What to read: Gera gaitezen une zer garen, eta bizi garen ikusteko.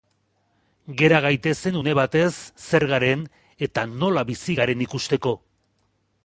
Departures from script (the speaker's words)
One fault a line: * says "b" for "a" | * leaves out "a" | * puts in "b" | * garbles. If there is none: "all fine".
* puts in "batez"
* puts in "nola"